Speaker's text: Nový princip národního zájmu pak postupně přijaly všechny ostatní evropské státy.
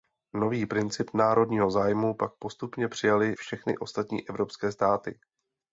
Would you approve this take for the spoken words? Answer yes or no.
yes